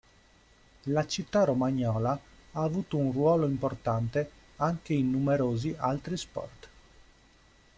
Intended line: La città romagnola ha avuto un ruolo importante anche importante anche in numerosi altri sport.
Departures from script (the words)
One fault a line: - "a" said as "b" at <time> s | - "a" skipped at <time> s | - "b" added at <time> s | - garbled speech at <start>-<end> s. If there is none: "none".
- "importante anche" skipped at 4.9 s